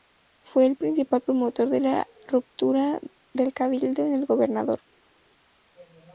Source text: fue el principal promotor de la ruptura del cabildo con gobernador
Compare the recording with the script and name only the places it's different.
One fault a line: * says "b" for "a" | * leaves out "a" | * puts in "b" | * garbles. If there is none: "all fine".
* puts in "el"